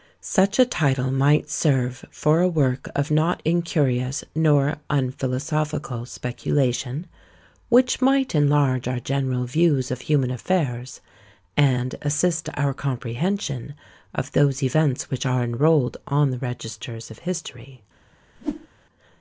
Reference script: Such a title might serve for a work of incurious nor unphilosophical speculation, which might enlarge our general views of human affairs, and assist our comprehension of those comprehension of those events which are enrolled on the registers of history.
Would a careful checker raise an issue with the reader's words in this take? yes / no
yes